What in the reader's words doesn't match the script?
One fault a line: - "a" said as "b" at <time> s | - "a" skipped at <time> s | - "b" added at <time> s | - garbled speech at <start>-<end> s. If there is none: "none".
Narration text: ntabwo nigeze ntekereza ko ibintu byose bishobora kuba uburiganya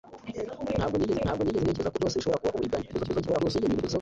- "ntabwo nigeze" added at 1.2 s
- "ibintu" skipped at 2.0 s
- garbled speech at 2.9-4.0 s